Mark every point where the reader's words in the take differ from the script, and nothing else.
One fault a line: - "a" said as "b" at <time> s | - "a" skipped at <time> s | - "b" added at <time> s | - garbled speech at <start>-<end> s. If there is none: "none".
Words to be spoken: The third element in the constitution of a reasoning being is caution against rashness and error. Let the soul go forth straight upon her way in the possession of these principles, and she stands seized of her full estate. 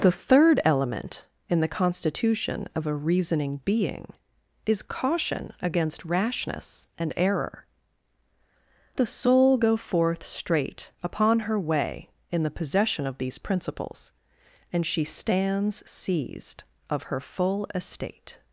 - "Let" skipped at 7.7 s